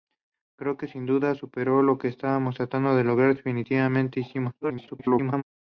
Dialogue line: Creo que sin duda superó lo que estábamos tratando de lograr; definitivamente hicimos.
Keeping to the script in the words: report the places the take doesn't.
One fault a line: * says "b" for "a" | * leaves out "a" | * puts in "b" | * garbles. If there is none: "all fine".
* garbles